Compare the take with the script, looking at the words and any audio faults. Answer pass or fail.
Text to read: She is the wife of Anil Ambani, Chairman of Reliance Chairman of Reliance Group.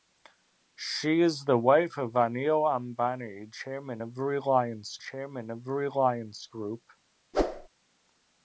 fail